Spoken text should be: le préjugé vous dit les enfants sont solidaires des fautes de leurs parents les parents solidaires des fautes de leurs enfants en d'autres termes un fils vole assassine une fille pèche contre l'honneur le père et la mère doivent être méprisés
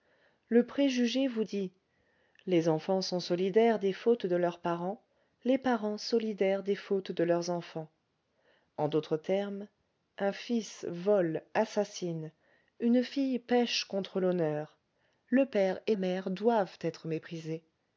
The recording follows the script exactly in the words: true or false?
false